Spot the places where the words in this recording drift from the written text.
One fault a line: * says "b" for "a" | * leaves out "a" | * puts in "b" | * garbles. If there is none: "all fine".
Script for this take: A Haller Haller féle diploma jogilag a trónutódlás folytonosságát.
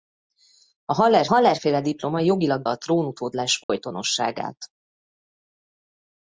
all fine